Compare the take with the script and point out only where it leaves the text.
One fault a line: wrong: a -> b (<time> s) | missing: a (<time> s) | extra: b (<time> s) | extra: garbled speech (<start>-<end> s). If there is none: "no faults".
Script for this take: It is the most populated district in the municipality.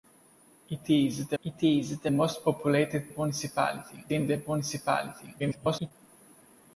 extra: it is the (1.4 s)
wrong: district -> municipality (3.1 s)
extra: garbled speech (5.4-5.9 s)